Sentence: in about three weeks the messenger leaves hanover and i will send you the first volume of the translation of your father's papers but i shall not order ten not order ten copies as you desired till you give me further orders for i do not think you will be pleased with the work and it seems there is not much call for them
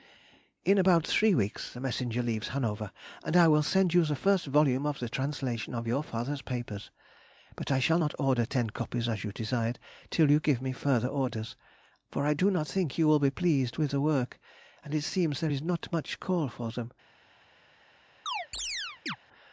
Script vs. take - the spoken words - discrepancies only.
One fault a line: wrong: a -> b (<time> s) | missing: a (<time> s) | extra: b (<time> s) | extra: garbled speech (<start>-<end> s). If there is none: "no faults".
missing: not order ten (8.7 s)